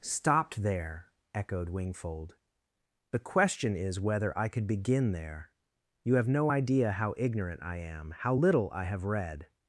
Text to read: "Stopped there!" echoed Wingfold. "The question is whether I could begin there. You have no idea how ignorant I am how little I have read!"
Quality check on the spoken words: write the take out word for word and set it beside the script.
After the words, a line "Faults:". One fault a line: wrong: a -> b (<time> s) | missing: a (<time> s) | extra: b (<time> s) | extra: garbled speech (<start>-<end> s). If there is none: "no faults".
"Stopped there!" echoed Wingfold. "The question is whether I could begin there. You have no idea how ignorant I am how little I have read!"
Faults:
no faults